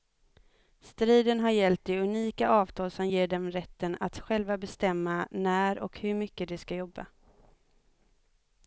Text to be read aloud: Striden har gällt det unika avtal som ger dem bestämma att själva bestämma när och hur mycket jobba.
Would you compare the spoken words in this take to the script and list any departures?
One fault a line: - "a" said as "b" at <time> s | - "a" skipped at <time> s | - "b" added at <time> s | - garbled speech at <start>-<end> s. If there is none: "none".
- "bestämma" said as "rätten" at 3.5 s
- "de ska" added at 6.5 s